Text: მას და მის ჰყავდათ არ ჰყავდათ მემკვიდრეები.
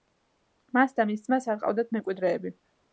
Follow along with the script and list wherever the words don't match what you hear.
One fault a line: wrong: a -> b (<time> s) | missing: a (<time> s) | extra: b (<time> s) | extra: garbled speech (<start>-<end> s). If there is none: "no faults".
wrong: ჰყავდათ -> ძმას (1.3 s)